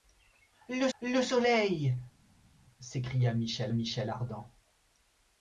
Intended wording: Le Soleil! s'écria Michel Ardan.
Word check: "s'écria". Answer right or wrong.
right